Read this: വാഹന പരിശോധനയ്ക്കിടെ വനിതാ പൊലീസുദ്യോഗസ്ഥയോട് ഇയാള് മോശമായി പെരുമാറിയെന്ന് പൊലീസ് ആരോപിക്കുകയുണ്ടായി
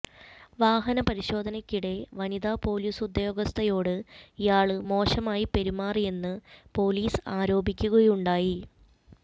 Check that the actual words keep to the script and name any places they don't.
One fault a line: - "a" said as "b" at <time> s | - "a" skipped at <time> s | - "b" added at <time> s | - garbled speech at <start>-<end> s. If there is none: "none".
none